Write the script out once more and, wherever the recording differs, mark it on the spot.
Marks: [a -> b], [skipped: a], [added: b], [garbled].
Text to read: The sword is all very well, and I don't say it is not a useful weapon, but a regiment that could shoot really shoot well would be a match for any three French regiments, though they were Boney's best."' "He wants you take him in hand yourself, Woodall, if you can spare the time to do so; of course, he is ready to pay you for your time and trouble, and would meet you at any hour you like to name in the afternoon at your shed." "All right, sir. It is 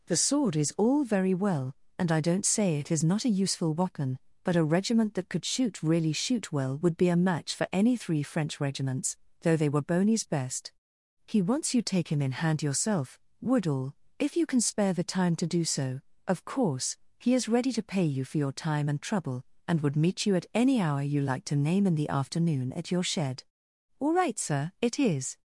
The sword is all very well, and I don't say it is not a useful weapon, but a regiment that could shoot really shoot well would be a match for any three French regiments, though they were Boney's best."' "He wants you take him in hand yourself, Woodall, if you can spare the time to do so; of course, he is ready to pay you for your time and trouble, and would meet you at any hour you like to name in the afternoon at your shed." "All right, sir. It is